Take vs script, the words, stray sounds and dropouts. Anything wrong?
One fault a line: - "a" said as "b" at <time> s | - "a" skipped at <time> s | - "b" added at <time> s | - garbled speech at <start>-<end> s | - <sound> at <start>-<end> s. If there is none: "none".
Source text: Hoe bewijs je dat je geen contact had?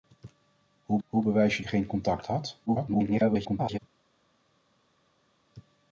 - "hoe" added at 1.1 s
- "dat" skipped at 1.6 s
- garbled speech at 2.7-3.8 s